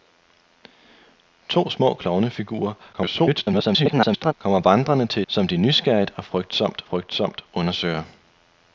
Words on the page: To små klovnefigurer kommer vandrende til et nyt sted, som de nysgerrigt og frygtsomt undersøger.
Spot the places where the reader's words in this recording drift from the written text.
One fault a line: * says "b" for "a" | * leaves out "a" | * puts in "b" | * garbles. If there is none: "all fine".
* garbles
* leaves out "et nyt sted"
* puts in "frygtsomt"